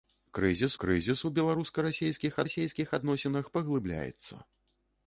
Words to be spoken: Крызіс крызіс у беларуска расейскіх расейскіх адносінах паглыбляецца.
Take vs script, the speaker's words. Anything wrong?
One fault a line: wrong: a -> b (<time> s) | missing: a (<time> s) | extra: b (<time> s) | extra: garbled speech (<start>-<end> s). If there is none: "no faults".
no faults